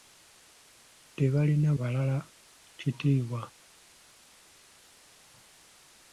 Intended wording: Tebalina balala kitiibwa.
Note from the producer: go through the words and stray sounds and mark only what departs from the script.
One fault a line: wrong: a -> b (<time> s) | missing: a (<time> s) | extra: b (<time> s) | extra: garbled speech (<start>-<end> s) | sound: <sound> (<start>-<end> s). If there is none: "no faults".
no faults